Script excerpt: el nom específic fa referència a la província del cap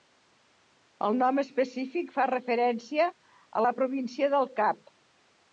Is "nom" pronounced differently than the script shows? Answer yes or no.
no